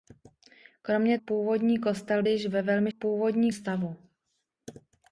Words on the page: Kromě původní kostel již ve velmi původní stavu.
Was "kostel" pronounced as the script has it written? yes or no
yes